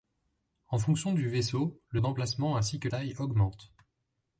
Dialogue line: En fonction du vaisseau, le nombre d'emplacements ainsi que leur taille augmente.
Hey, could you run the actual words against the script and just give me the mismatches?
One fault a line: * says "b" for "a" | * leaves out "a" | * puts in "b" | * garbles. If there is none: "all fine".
* leaves out "nombre"
* leaves out "leur"